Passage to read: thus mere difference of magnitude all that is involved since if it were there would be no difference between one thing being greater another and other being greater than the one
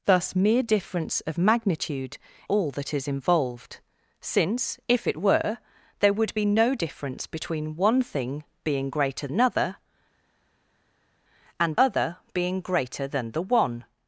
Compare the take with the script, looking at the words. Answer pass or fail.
pass